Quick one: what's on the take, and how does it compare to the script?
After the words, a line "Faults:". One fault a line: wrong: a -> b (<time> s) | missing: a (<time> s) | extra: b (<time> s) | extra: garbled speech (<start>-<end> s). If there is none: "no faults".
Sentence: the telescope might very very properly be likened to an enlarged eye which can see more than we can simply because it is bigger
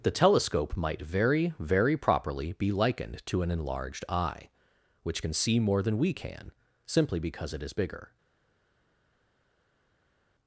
the telescope might very very properly be likened to an enlarged eye which can see more than we can simply because it is bigger
Faults:
no faults